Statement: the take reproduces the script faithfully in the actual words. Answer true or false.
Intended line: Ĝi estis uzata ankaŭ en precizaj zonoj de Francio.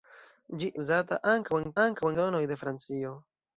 false